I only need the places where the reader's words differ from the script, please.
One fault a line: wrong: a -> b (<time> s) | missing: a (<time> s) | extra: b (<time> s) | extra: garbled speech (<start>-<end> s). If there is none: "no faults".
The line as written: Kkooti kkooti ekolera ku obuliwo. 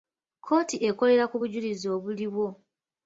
missing: kkooti (0.8 s)
extra: bujulizi (1.4 s)